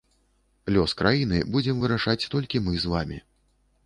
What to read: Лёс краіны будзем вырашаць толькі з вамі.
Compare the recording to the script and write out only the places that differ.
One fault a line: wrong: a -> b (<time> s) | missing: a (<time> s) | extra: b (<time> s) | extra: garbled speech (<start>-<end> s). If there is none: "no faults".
extra: мы (2.7 s)